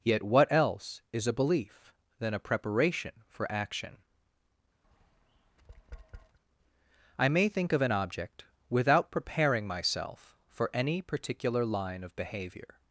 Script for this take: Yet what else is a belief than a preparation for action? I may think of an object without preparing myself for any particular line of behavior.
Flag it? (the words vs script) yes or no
no